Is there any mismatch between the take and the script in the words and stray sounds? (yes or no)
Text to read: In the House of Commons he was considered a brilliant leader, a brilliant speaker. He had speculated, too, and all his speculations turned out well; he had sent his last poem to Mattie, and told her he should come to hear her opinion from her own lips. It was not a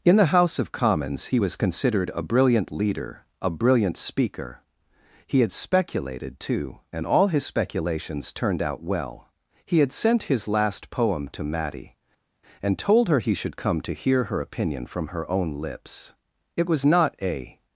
no